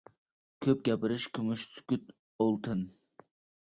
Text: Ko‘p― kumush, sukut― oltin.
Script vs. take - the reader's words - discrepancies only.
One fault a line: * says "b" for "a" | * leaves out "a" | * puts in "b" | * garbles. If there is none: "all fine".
* puts in "gapirish"